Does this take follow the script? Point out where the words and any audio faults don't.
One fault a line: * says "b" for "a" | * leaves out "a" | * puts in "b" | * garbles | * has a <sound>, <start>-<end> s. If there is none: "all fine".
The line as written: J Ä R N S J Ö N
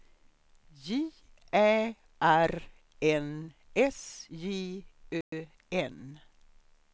* has a dropout, 5.2-5.3 s